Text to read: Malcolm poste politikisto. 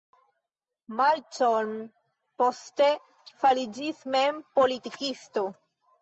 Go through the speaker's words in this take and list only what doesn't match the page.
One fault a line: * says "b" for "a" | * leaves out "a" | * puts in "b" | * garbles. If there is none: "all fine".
* puts in "fariĝis mem"